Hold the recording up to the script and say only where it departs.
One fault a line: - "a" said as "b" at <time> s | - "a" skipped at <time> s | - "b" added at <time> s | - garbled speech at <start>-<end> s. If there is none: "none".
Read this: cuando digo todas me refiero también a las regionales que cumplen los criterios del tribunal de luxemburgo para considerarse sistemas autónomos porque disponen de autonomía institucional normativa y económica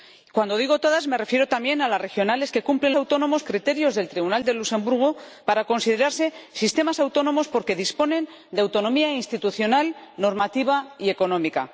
- "los" said as "autónomos" at 2.9 s